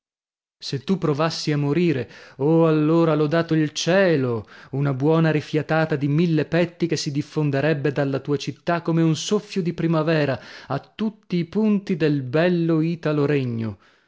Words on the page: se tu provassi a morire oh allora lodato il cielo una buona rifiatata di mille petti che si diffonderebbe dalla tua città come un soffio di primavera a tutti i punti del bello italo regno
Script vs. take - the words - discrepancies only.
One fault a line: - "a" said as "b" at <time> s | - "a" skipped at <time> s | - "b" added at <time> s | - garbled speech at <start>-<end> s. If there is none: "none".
none